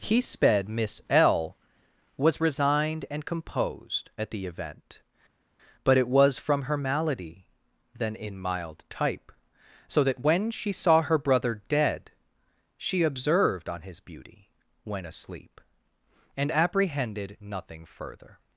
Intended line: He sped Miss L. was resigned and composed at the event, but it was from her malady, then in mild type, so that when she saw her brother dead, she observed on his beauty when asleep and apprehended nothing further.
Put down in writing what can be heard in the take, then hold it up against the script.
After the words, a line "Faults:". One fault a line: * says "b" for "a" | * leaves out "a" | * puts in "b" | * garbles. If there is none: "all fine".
He sped Miss L. was resigned and composed at the event, but it was from her malady, then in mild type, so that when she saw her brother dead, she observed on his beauty when asleep and apprehended nothing further.
Faults:
all fine